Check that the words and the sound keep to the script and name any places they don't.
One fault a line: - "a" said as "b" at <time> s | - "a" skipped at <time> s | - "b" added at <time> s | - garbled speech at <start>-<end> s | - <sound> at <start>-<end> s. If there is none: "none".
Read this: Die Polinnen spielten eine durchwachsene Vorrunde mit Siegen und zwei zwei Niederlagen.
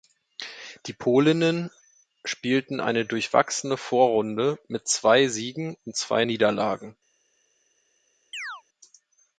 - "zwei" added at 4.9 s
- "zwei" skipped at 6.2 s
- chirp at 8.3-8.6 s